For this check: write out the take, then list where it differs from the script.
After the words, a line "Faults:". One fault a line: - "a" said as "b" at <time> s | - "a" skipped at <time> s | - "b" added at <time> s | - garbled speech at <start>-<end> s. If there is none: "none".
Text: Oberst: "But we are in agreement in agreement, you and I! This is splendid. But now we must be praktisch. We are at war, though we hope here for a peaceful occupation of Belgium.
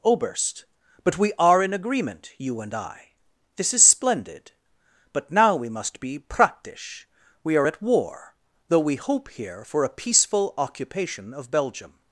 Oberst: "But we are in agreement, you and I! This is splendid. But now we must be praktisch. We are at war, though we hope here for a peaceful occupation of Belgium.
Faults:
- "in agreement" skipped at 2.3 s